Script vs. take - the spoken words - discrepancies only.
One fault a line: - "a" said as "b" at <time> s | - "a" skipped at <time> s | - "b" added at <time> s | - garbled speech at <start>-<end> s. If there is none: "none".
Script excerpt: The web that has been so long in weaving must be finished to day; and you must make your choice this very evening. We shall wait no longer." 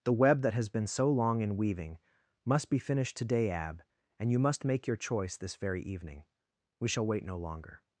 - "to day" said as "today ab" at 3.1 s